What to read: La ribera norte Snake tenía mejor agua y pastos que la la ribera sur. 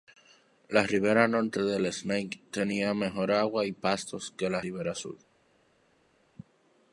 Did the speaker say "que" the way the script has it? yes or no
yes